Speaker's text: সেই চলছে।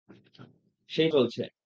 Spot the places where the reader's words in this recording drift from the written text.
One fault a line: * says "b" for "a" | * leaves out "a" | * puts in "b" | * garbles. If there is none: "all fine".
all fine